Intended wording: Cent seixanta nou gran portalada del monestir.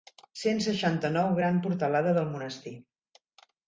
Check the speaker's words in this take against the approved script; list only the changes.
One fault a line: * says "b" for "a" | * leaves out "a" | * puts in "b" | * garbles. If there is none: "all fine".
all fine